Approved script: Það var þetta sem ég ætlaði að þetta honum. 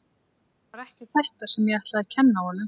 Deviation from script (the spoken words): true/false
true